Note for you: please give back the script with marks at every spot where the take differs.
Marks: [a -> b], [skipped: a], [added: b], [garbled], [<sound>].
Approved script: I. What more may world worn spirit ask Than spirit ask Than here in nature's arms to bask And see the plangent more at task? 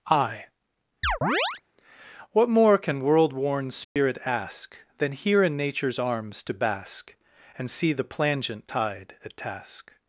I. [chirp] What more [may -> can] world worn spirit [dropout] ask Than [skipped: spirit ask Than] here in nature's arms to bask And see the plangent [more -> tide] at task?